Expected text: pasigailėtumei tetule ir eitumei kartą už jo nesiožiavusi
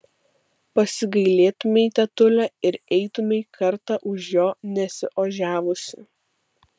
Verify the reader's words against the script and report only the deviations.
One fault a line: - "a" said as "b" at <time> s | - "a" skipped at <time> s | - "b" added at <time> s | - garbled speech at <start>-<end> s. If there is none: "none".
none